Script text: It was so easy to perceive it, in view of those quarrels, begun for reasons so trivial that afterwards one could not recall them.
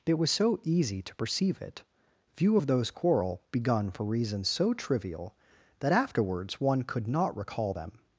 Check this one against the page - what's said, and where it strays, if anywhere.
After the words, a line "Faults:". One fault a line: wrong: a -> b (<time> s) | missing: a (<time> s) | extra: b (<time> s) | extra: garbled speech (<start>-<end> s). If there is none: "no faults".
It was so easy to perceive it, view of those quarrel, begun for reasons so trivial that afterwards one could not recall them.
Faults:
missing: in (1.8 s)
wrong: quarrels -> quarrel (2.9 s)